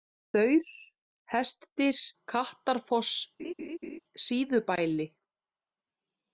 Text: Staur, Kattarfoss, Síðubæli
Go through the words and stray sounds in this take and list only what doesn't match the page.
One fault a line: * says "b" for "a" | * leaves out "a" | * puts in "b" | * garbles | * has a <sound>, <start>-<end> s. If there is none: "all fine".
* puts in "Hestdyr"
* has a laugh, 3.4-4.0 s